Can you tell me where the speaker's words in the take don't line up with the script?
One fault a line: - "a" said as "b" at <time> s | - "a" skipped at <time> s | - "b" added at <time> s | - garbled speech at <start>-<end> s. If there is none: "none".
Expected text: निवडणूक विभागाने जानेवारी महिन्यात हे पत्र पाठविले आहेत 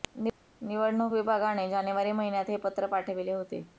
- "आहेत" said as "होते" at 3.3 s